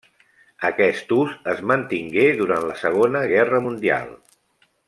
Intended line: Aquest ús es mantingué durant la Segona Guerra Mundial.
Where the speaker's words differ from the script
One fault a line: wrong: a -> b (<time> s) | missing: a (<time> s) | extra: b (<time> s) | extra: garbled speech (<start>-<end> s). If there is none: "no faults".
no faults